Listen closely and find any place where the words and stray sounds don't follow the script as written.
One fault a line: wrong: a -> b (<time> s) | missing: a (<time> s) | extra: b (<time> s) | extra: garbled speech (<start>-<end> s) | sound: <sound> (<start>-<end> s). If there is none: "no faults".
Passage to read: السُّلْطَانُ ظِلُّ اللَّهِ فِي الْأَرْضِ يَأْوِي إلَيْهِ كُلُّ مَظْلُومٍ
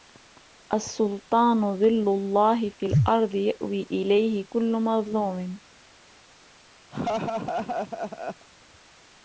sound: laugh (6.9-8.5 s)